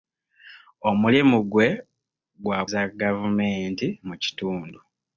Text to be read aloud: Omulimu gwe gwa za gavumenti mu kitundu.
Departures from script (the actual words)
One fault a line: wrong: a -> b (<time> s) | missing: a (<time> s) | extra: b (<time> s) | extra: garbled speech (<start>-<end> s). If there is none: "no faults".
no faults